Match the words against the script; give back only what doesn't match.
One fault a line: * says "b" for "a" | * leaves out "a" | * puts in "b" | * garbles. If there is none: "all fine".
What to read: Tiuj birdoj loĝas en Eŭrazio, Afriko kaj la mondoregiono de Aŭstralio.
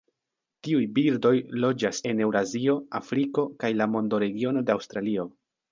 all fine